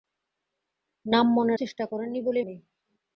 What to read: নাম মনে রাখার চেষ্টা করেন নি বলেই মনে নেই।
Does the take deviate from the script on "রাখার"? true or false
true